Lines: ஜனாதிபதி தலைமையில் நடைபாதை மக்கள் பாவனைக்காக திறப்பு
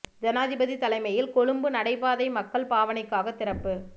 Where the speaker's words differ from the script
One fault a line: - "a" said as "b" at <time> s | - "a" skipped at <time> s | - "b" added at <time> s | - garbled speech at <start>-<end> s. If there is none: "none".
- "கொழும்பு" added at 1.3 s